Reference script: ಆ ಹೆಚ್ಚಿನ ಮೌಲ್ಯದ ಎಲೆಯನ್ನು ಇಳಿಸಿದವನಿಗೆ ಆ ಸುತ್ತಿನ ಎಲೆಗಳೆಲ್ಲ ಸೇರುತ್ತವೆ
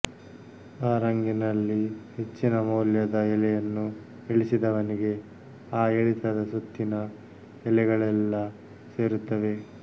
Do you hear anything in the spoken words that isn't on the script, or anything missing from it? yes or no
yes